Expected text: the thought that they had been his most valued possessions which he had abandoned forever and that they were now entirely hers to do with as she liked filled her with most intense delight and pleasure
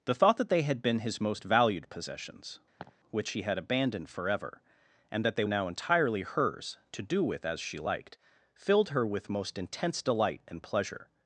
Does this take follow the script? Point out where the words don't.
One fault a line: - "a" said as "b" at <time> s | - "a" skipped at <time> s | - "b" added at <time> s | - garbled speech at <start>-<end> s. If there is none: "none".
- "were" skipped at 5.4 s